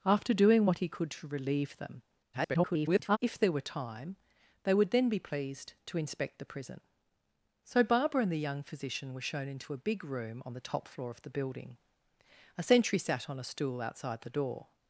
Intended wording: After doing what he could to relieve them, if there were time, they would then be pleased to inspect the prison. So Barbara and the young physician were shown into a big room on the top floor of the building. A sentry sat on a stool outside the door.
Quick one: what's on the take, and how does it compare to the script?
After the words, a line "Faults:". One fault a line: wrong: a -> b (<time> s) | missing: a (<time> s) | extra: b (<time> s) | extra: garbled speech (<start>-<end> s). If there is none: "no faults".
After doing what he could to relieve them, [garbled] if there were time, they would then be pleased to inspect the prison. So Barbara and the young physician were shown into a big room on the top floor of the building. A sentry sat on a stool outside the door.
Faults:
extra: garbled speech (2.3-3.2 s)